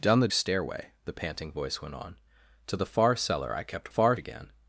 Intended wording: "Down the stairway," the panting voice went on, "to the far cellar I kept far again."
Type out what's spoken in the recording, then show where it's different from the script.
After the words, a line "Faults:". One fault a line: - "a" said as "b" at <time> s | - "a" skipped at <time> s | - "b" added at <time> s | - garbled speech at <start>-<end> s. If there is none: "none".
"Down the stairway," the panting voice went on, "to the far cellar I kept far again."
Faults:
none